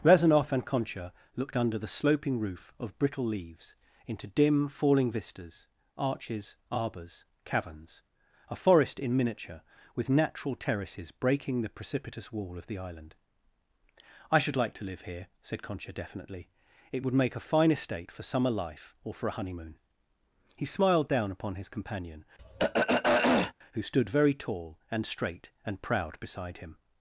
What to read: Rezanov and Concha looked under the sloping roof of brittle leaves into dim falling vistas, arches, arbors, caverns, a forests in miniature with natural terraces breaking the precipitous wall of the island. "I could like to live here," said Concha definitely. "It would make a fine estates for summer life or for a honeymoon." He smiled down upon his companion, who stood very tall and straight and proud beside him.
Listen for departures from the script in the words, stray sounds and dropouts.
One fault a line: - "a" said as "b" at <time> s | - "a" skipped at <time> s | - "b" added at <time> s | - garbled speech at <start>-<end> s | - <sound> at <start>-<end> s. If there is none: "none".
- "forests" said as "forest" at 8.5 s
- "could" said as "should" at 14.4 s
- "estates" said as "estate" at 17.7 s
- throat clearing at 22.4-23.5 s